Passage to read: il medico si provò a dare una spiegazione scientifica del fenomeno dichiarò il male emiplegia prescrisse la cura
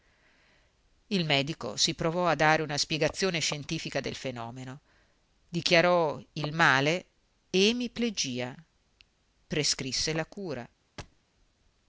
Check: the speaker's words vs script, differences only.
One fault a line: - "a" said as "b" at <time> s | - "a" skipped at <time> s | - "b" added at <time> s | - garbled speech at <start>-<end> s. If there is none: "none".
none